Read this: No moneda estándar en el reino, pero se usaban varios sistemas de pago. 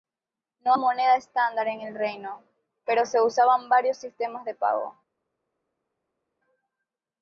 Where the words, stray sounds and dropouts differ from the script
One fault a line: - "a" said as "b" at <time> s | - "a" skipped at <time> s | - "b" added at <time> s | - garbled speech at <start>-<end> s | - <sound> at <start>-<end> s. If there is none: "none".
none